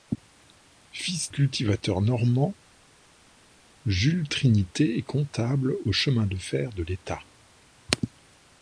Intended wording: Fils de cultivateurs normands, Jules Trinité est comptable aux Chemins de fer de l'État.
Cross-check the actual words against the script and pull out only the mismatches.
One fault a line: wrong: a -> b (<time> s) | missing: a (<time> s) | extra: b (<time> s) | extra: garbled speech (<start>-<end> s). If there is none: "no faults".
missing: de (1.3 s)